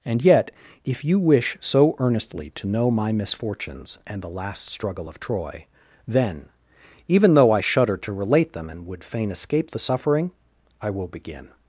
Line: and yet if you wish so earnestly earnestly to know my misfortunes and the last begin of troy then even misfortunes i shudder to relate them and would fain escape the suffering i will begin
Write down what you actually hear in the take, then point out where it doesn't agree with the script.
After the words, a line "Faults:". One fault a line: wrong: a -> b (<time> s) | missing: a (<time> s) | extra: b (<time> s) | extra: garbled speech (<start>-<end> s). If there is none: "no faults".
and yet if you wish so earnestly to know my misfortunes and the last struggle of troy then even though i shudder to relate them and would fain escape the suffering i will begin
Faults:
missing: earnestly (2.5 s)
wrong: begin -> struggle (4.7 s)
wrong: misfortunes -> though (7.3 s)